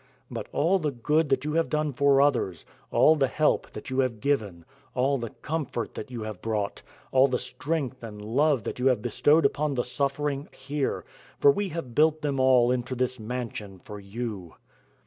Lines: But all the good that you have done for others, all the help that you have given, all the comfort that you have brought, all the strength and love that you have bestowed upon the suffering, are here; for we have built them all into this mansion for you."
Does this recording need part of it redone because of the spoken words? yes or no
yes